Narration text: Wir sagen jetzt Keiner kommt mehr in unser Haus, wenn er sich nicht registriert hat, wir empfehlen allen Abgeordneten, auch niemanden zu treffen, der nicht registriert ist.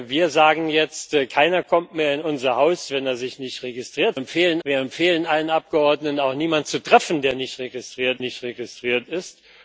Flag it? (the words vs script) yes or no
yes